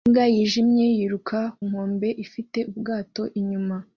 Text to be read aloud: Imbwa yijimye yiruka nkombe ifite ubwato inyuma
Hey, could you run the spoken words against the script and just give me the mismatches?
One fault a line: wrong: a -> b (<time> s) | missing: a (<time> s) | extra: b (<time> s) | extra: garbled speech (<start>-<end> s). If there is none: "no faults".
no faults